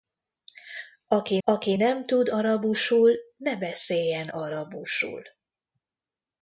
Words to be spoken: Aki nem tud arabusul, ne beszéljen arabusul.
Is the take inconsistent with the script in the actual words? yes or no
yes